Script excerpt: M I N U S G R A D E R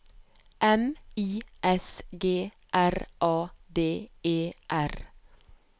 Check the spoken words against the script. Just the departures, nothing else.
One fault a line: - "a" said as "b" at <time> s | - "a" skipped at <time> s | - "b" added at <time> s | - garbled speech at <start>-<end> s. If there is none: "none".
- "N U" skipped at 1.4 s